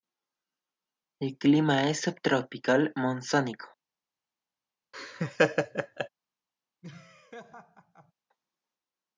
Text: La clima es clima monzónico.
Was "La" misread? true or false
true